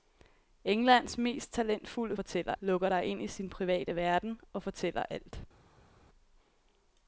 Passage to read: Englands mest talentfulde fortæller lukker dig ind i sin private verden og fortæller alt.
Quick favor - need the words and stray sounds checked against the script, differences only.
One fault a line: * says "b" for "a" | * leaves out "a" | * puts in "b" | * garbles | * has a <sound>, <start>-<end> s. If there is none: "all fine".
all fine